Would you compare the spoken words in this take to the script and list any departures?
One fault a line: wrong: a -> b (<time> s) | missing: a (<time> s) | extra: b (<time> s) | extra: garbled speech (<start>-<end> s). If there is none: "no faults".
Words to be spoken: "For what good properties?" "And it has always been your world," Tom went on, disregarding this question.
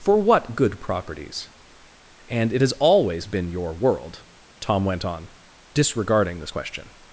no faults